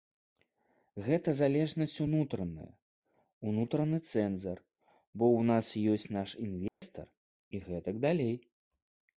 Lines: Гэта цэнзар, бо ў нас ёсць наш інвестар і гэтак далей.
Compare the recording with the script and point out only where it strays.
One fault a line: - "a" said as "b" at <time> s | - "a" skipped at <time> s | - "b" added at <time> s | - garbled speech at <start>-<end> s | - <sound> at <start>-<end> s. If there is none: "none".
- "залежнасць унутраная унутраны" added at 1.4 s
- dropout at 6.7-6.8 s